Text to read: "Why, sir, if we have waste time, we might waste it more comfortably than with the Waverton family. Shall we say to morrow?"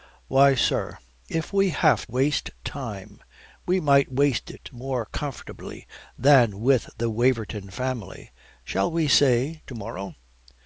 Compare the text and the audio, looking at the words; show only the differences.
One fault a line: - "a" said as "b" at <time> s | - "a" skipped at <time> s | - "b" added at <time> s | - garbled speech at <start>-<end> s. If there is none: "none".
none